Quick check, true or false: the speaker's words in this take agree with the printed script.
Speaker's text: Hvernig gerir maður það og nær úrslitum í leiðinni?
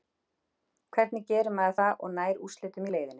true